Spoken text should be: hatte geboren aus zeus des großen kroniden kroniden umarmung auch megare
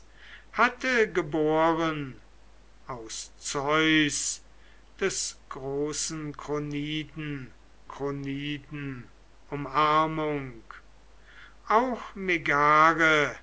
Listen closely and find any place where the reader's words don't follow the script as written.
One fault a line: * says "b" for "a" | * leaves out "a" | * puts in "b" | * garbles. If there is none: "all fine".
all fine